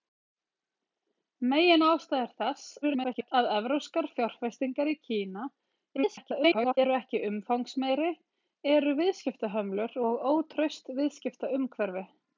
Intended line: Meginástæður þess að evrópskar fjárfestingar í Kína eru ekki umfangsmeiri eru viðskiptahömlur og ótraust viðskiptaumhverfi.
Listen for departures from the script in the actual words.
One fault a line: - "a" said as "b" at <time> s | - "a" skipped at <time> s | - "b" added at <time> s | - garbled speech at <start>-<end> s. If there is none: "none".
- garbled speech at 2.8-3.3 s
- garbled speech at 6.0-6.8 s